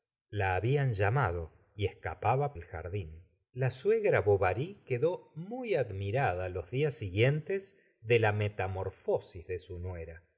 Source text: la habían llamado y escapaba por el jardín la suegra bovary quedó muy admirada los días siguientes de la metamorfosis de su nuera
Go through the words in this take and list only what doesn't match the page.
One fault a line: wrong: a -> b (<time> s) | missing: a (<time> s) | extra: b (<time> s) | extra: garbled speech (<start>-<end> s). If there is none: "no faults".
missing: por (2.5 s)